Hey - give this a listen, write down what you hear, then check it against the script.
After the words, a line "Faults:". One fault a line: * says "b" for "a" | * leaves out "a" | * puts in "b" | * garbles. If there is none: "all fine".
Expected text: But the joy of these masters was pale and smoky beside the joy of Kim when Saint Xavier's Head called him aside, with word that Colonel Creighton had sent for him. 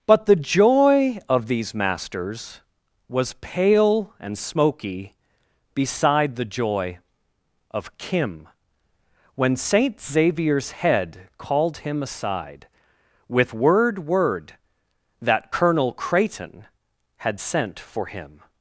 But the joy of these masters was pale and smoky beside the joy of Kim when Saint Xavier's Head called him aside, with word word that Colonel Creighton had sent for him.
Faults:
* puts in "word"